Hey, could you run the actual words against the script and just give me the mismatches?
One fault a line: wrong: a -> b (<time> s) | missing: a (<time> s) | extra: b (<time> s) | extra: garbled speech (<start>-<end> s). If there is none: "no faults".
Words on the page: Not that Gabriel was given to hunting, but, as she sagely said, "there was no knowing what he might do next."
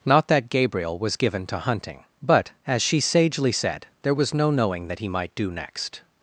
wrong: what -> that (4.9 s)